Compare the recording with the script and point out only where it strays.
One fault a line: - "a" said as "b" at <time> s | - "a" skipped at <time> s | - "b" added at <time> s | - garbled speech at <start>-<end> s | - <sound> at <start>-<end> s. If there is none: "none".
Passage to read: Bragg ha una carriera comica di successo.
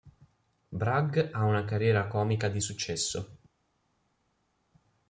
none